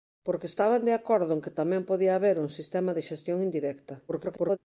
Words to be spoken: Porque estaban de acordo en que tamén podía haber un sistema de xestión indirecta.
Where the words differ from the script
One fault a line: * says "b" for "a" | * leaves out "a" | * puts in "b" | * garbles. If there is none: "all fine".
* garbles